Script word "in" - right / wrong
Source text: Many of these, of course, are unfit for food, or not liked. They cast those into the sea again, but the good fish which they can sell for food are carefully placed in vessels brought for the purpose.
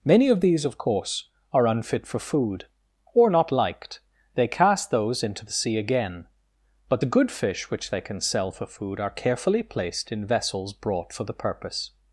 right